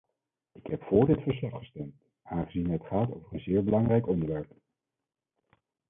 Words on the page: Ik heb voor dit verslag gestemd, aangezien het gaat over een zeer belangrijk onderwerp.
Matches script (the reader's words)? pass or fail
pass